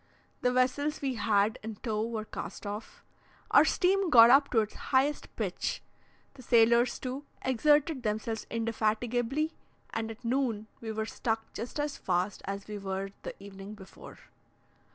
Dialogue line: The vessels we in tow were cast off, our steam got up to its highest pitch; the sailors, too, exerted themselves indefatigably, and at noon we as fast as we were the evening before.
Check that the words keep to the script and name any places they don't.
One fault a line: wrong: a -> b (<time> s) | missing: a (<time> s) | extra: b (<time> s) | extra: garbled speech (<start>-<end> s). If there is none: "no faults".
extra: had (1.1 s)
extra: were stuck just (10.9 s)